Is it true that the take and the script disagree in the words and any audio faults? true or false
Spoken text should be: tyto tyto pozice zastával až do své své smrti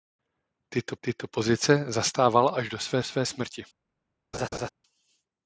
true